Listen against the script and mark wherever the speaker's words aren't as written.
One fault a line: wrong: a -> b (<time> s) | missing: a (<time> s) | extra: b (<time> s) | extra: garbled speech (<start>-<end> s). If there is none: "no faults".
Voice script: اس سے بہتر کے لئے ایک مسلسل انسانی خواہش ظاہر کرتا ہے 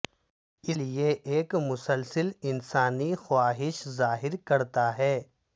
missing: سے بہتر کے (0.8 s)